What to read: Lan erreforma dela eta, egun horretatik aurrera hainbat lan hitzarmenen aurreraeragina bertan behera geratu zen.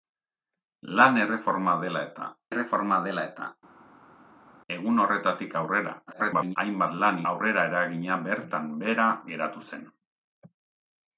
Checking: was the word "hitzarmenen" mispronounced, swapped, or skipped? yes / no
yes